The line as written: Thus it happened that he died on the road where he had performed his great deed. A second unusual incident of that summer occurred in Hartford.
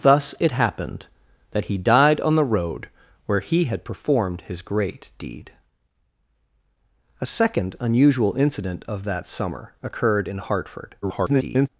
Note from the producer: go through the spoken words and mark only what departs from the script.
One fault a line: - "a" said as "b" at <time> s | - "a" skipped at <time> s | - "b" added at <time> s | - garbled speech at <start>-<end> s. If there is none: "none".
- garbled speech at 11.0-11.7 s